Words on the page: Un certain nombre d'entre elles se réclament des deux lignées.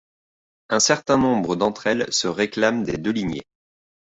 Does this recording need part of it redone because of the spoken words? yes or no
yes